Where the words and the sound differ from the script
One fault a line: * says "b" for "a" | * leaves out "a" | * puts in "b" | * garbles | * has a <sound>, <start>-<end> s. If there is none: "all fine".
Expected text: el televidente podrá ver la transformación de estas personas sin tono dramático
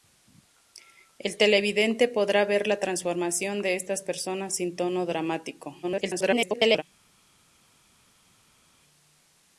* garbles